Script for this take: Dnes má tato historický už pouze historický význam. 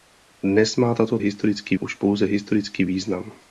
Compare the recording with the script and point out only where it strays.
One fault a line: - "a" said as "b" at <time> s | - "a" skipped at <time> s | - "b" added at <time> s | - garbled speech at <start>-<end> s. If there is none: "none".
none